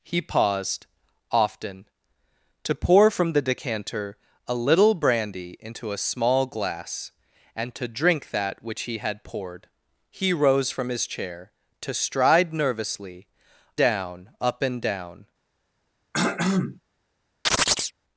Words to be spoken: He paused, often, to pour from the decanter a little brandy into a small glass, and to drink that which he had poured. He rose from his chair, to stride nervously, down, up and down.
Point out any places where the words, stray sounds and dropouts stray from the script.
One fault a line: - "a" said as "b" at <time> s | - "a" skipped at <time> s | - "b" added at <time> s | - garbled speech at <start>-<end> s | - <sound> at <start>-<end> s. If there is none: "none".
- throat clearing at 16.1-16.8 s
- chirp at 17.5-17.9 s